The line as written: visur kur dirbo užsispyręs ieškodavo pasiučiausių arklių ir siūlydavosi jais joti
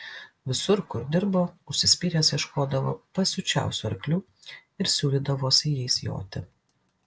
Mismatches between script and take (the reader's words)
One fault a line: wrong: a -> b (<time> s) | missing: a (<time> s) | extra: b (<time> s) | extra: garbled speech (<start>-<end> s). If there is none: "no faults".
no faults